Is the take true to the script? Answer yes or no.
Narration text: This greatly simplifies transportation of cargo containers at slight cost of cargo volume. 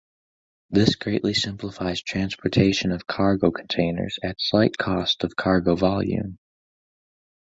yes